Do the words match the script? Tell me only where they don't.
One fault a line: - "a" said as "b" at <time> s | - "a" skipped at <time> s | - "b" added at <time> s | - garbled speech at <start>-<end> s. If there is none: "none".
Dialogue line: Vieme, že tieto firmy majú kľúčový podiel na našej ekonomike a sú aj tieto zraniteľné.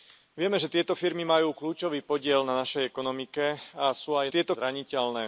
none